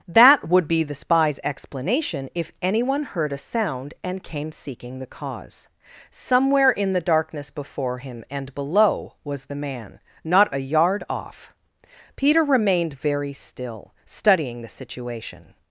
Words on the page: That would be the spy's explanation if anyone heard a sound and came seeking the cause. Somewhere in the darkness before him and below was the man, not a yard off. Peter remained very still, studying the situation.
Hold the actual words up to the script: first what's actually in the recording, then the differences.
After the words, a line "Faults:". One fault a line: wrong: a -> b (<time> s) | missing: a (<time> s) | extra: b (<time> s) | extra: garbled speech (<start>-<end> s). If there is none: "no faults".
That would be the spy's explanation if anyone heard a sound and came seeking the cause. Somewhere in the darkness before him and below was the man, not a yard off. Peter remained very still, studying the situation.
Faults:
no faults